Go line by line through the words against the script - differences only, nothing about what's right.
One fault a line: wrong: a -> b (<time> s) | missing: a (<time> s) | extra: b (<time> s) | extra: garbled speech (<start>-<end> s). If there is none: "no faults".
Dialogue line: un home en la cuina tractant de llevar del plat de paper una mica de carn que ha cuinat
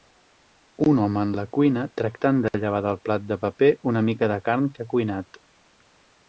no faults